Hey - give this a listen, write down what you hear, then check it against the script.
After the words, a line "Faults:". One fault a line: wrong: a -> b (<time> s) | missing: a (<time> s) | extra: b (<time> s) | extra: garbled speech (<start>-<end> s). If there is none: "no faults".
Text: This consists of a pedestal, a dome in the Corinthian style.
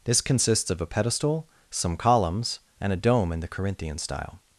This consists of a pedestal, some columns, and a dome in the Corinthian style.
Faults:
extra: some columns and (1.7 s)